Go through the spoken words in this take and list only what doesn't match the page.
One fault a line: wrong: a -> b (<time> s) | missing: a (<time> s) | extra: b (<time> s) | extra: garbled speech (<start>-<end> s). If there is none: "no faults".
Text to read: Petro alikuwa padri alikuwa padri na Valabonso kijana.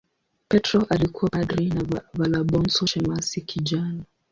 missing: alikuwa padri (1.7 s)
extra: shemasi (2.8 s)